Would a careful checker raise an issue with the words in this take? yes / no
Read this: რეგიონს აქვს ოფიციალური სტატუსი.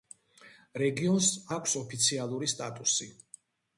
no